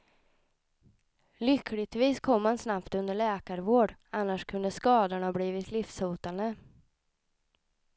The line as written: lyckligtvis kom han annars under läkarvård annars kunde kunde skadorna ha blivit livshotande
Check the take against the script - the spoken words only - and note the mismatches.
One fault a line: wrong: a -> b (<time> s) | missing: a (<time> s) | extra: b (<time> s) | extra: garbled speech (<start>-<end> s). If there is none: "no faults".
wrong: annars -> snabbt (2.6 s)
missing: kunde (4.7 s)